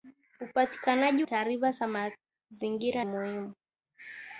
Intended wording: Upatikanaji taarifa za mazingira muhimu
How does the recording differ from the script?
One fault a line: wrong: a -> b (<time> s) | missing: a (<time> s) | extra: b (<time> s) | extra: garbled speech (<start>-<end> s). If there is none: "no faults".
no faults